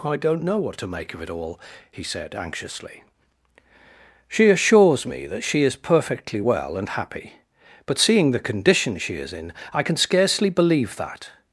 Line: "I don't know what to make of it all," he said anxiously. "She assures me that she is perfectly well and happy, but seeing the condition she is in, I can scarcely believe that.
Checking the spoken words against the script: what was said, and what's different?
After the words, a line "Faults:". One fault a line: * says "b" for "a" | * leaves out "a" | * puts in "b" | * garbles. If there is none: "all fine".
"I don't know what to make of it all," he said anxiously. "She assures me that she is perfectly well and happy, but seeing the condition she is in, I can scarcely believe that.
Faults:
all fine